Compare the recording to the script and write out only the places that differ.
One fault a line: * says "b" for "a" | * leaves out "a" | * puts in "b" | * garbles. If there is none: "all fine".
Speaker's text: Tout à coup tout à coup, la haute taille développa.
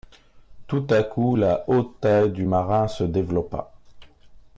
* says "la haute taille du marin se" for "tout à coup la haute taille"